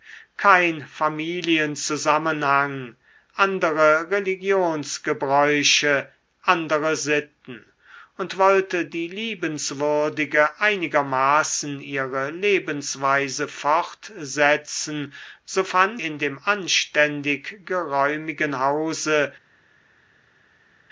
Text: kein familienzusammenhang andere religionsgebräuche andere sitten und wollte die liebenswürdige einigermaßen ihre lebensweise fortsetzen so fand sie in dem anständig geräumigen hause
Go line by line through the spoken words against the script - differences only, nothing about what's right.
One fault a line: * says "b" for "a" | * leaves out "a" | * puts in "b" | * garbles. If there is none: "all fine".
* leaves out "sie"